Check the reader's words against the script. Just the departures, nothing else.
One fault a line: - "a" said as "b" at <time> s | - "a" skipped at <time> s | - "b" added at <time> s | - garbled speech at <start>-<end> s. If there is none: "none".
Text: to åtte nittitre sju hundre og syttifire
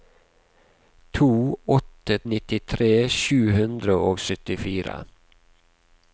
none